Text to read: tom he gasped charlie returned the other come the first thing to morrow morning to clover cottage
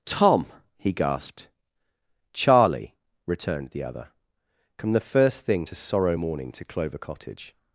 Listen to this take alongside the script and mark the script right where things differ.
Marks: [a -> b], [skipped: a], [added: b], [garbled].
tom he gasped charlie returned the other come the first thing to [morrow -> sorrow] morning to clover cottage